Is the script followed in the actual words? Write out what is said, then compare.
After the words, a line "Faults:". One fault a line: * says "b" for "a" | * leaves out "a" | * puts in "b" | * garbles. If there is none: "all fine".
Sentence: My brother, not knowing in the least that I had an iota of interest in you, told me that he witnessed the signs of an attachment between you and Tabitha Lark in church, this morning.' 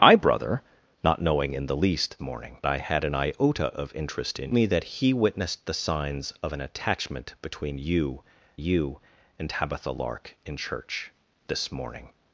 My brother, not knowing in the least morning I had an iota of interest in me that he witnessed the signs of an attachment between you you and Tabitha Lark in church, this morning.'
Faults:
* says "morning" for "that"
* leaves out "you told"
* puts in "you"